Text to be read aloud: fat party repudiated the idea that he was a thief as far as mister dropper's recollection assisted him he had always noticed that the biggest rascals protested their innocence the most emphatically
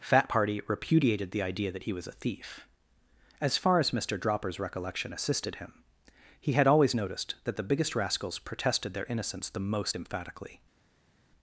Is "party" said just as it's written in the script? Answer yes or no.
yes